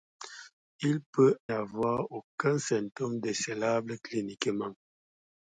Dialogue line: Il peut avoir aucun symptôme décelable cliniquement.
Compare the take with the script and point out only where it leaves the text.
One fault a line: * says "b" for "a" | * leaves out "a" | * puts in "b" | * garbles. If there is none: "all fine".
all fine